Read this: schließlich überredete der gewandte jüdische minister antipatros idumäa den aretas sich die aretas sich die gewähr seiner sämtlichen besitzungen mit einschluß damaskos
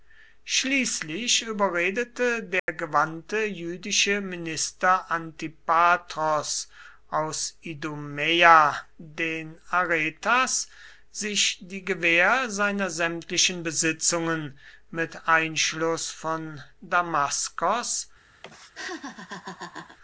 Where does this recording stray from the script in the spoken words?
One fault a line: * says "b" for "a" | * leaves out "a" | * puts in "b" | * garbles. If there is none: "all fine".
* puts in "aus"
* leaves out "aretas sich die"
* puts in "von"